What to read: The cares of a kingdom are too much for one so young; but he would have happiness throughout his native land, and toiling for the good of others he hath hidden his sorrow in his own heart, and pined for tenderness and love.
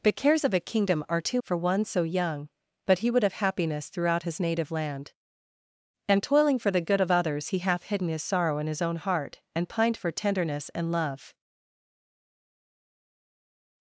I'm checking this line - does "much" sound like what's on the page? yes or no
no